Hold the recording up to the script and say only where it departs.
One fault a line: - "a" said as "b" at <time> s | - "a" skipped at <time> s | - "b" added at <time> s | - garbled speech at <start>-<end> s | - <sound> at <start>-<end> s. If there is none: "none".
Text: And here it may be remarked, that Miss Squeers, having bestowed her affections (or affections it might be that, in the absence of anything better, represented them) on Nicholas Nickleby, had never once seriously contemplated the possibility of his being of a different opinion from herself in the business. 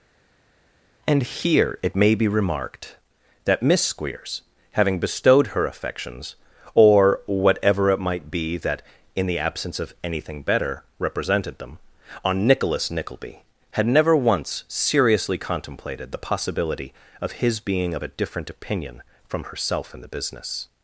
- "affections" said as "whatever" at 7.3 s